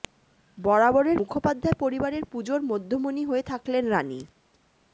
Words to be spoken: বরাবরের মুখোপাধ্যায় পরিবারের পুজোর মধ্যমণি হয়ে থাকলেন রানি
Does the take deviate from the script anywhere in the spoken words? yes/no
no